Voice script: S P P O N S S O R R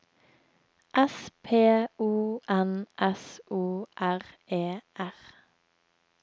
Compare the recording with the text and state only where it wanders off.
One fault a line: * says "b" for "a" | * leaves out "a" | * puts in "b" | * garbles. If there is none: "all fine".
* leaves out "P"
* leaves out "S"
* puts in "E"